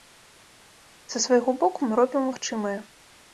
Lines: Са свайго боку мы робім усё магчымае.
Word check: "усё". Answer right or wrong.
wrong